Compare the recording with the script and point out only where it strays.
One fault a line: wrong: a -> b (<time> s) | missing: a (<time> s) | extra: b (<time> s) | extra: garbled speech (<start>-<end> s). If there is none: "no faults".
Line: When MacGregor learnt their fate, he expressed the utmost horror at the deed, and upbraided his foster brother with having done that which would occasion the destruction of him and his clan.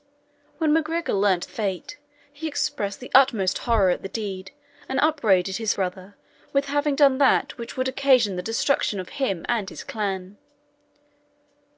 missing: their (1.5 s)
missing: foster (5.7 s)